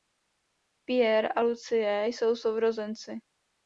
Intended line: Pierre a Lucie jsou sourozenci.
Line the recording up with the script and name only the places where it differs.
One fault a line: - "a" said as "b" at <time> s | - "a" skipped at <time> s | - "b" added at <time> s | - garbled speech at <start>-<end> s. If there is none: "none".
none